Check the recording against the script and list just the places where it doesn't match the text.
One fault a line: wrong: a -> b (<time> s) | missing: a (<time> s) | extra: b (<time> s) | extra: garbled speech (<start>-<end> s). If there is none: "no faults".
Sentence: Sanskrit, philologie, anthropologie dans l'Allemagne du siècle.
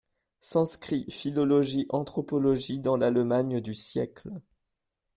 no faults